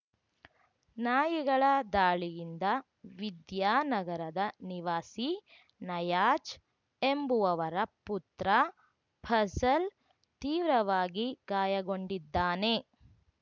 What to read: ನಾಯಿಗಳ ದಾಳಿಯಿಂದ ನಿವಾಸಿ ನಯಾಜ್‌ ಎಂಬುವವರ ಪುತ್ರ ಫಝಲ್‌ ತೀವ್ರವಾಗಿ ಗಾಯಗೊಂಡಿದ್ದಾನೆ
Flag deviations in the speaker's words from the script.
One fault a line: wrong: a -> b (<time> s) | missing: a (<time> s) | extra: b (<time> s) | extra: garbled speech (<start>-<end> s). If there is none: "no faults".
extra: ವಿದ್ಯಾನಗರದ (3.2 s)